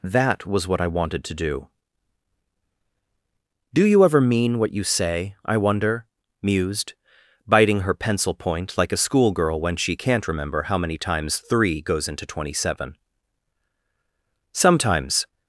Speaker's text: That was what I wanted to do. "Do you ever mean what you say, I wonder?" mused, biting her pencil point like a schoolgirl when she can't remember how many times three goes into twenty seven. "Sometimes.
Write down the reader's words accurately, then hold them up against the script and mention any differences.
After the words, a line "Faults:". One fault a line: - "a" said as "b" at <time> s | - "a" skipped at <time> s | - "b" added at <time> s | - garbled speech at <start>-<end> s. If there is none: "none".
That was what I wanted to do. "Do you ever mean what you say, I wonder?" mused, biting her pencil point like a schoolgirl when she can't remember how many times three goes into twenty seven. "Sometimes.
Faults:
none